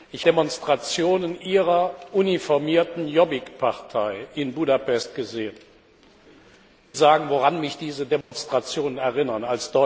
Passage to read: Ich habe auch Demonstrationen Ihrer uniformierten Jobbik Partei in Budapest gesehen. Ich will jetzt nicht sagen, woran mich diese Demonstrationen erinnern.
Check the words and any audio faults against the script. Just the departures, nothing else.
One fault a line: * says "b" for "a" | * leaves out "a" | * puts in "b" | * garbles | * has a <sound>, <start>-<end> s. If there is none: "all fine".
* leaves out "habe auch"
* leaves out "will jetzt nicht"
* has a dropout, 8.2-8.3 s